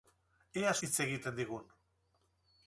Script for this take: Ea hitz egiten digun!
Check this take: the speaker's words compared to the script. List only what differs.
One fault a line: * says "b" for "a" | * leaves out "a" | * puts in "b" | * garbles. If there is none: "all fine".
all fine